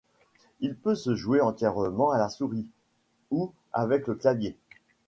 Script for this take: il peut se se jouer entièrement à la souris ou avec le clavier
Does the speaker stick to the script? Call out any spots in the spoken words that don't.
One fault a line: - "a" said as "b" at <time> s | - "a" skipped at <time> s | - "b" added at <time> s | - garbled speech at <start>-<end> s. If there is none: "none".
- "se" skipped at 1.1 s